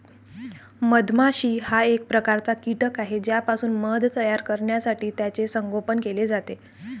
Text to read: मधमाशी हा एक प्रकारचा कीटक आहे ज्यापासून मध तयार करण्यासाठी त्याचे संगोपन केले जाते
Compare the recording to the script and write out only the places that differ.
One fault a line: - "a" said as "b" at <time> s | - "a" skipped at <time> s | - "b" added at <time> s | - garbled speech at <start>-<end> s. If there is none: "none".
none